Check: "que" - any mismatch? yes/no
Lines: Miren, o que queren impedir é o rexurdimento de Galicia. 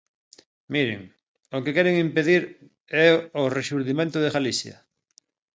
no